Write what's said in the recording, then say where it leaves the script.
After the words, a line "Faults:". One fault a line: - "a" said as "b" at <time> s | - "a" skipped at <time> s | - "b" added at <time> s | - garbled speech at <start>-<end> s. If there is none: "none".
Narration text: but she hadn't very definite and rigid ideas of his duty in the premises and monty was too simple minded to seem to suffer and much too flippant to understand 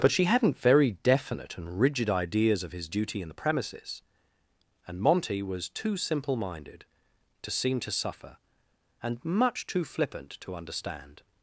but she hadn't very definite and rigid ideas of his duty in the premises and monty was too simple minded to seem to suffer and much too flippant to understand
Faults:
none